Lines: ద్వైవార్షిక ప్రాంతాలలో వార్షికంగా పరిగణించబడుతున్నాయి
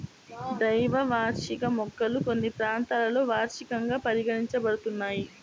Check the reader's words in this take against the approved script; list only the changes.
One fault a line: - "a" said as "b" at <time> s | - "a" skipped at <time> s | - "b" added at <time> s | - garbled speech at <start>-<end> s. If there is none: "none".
- "మొక్కలు కొన్ని" added at 1.8 s